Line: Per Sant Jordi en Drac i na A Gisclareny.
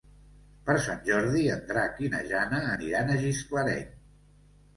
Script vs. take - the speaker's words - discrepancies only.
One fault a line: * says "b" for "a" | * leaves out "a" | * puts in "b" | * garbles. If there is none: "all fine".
* puts in "Jana aniran"